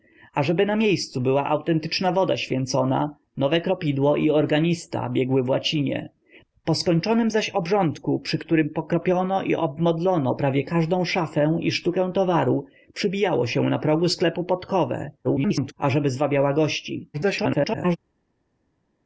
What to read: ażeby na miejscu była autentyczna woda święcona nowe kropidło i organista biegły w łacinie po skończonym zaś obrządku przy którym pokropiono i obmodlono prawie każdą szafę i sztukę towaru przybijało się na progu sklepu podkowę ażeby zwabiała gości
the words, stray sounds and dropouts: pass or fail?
fail